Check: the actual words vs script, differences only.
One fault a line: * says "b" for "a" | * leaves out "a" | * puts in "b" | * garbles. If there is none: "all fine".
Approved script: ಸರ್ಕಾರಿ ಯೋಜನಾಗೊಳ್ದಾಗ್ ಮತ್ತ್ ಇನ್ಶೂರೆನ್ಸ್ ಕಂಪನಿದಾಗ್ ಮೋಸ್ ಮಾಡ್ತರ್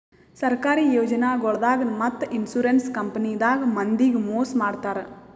* puts in "ಮಂದಿಗ್"